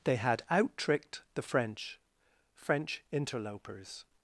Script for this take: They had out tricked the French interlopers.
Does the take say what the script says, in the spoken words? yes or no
no